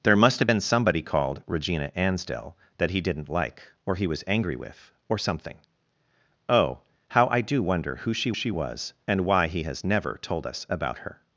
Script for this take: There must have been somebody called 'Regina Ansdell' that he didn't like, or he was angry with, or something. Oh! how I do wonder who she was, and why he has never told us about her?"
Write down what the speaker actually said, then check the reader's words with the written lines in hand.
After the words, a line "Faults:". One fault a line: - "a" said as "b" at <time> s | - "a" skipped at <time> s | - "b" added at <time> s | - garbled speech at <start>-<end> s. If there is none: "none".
There must have been somebody called 'Regina Ansdell' that he didn't like, or he was angry with, or something. Oh! how I do wonder who she she was, and why he has never told us about her?"
Faults:
- "she" added at 8.3 s